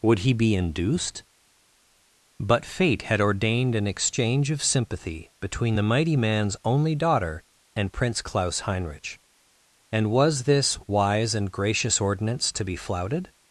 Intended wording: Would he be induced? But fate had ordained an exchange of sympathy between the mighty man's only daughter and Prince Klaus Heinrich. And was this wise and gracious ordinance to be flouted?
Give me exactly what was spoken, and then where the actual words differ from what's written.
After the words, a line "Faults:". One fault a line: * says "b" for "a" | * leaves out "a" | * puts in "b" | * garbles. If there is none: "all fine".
Would he be induced? But fate had ordained an exchange of sympathy between the mighty man's only daughter and Prince Klaus Heinrich. And was this wise and gracious ordinance to be flouted?
Faults:
all fine